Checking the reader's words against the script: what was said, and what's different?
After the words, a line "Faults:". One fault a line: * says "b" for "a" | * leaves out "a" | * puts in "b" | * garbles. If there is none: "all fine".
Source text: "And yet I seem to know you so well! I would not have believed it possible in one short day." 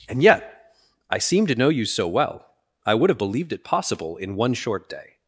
"And yet I seem to know you so well! I would have believed it possible in one short day."
Faults:
* leaves out "not"